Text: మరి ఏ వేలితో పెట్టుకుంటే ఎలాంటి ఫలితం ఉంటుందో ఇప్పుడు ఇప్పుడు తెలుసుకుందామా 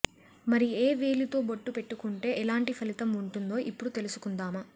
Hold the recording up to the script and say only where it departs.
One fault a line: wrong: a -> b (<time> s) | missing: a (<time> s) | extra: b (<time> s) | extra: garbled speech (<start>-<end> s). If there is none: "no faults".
extra: బొట్టు (1.5 s)
missing: ఇప్పుడు (3.9 s)